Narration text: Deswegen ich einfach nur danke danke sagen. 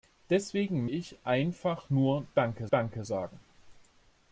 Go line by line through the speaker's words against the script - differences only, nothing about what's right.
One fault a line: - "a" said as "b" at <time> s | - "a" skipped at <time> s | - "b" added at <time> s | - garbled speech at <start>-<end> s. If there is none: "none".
none